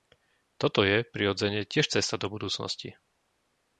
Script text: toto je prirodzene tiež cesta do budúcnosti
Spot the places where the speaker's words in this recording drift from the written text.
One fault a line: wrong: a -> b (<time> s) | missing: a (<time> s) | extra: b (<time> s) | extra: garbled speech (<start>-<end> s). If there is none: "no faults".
no faults